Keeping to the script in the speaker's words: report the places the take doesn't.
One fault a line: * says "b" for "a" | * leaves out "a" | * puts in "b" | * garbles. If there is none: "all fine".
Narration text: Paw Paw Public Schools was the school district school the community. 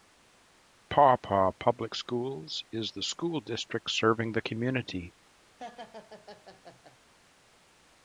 * says "is" for "was"
* says "serving" for "school"